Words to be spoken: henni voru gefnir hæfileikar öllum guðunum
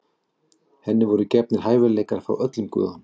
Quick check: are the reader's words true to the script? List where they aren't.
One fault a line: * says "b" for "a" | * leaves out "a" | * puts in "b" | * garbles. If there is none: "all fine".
* puts in "frá"